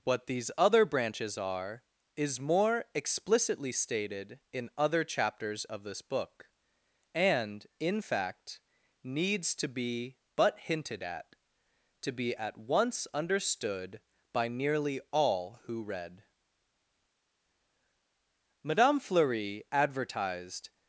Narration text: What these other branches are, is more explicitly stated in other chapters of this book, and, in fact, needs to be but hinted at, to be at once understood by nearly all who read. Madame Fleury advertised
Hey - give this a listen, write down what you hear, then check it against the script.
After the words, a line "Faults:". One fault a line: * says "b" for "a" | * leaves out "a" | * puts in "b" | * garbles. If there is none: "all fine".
What these other branches are, is more explicitly stated in other chapters of this book, and, in fact, needs to be but hinted at, to be at once understood by nearly all who read. Madame Fleury advertised
Faults:
all fine